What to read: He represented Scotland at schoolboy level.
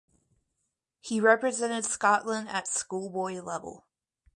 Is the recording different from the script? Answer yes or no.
no